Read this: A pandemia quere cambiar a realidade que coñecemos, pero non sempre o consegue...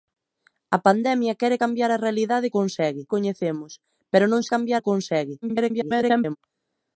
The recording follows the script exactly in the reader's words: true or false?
false